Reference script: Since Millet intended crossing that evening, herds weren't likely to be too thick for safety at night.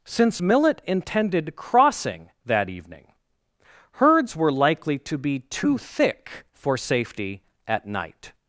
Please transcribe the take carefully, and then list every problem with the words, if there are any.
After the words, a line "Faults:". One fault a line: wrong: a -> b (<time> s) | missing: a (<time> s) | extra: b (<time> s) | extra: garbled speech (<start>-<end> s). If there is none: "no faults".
Since Millet intended crossing that evening, herds were likely to be too thick for safety at night.
Faults:
wrong: weren't -> were (4.4 s)